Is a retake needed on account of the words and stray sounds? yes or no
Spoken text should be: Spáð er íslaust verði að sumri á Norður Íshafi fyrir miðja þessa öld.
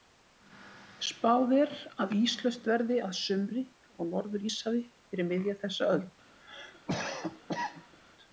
yes